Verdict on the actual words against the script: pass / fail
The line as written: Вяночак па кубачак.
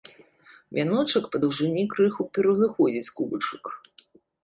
fail